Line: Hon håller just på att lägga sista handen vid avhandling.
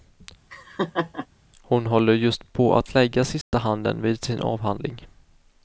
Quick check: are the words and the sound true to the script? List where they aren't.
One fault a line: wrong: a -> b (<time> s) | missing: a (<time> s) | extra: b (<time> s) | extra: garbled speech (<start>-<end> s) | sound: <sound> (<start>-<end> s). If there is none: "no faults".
sound: laugh (0.5-1.3 s)
sound: dropout (3.4-3.5 s)
extra: sin (4.2 s)